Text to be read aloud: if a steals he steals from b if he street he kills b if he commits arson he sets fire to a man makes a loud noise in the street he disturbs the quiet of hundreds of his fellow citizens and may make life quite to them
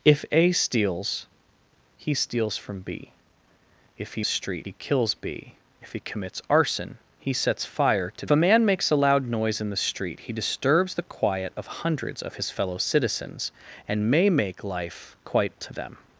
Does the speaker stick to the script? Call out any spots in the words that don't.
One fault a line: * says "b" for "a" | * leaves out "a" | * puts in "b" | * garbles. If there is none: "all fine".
all fine